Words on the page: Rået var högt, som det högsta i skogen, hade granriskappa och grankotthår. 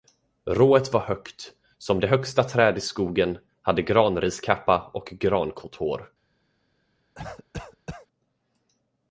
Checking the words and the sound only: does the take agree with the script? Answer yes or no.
no